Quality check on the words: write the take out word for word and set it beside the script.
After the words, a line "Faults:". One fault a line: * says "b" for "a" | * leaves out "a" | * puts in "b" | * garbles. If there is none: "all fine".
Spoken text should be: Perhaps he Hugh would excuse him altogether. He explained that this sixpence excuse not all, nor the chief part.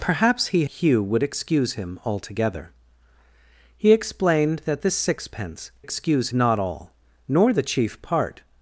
Perhaps he Hugh would excuse him altogether. He explained that this sixpence excuse not all, nor the chief part.
Faults:
all fine